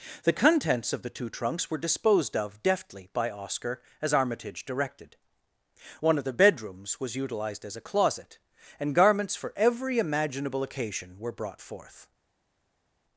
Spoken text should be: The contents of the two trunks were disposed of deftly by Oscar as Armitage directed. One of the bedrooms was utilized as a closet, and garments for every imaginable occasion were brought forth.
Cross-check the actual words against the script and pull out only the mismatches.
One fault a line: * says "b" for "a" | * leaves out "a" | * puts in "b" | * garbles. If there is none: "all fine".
all fine